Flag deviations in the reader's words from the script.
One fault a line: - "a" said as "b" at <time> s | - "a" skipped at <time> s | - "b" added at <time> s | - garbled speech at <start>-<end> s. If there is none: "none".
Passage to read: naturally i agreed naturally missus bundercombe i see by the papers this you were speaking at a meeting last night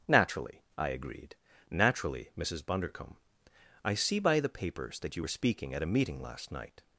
- "this" said as "that" at 5.0 s